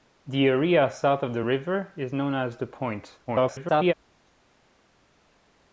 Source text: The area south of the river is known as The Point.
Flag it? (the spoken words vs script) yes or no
yes